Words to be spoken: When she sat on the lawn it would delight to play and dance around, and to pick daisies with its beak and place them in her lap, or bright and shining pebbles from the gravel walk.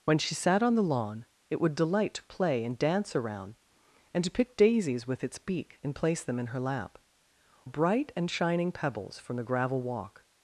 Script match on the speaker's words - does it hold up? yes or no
no